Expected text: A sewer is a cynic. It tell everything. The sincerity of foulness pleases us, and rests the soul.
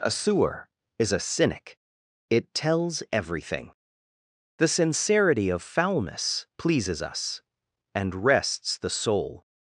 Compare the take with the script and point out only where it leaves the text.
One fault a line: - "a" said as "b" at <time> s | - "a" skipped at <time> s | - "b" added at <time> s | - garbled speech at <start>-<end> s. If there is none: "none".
- "tell" said as "tells" at 2.5 s